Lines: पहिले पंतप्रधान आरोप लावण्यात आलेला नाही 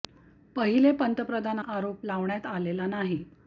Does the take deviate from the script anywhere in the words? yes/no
no